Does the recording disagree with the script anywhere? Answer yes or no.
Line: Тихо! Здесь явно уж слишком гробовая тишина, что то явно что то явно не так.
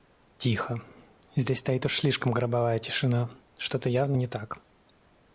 yes